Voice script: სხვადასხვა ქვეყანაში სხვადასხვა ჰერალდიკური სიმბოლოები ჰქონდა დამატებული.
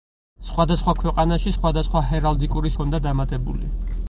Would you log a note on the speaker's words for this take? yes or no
yes